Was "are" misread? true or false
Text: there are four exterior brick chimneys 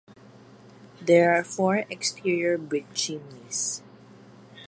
false